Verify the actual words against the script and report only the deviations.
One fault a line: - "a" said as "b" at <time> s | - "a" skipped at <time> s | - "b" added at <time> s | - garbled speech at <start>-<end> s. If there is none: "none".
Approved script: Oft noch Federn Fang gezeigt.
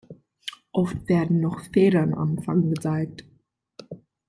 - "werden" added at 1.1 s
- "am" added at 2.1 s